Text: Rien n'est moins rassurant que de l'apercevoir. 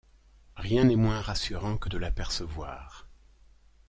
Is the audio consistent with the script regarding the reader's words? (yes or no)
yes